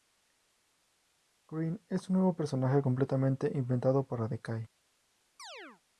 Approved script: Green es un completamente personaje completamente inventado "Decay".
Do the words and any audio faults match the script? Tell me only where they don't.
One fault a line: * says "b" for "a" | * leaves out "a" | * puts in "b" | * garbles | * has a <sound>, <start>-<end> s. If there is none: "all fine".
* says "nuevo" for "completamente"
* puts in "para"
* has a chirp, 5.4-5.8 s